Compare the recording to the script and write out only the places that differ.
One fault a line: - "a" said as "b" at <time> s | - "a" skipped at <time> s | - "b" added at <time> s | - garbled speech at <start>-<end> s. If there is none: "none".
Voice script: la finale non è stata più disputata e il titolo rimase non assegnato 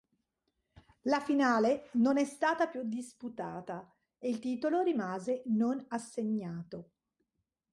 none